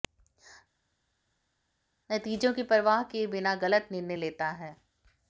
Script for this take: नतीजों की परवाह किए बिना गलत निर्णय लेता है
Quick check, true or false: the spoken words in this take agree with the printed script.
true